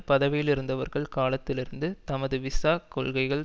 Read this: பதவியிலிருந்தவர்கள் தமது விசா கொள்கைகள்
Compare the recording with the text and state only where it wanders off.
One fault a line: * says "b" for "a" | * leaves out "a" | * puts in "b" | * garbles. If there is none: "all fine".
* puts in "காலத்திலிருந்து"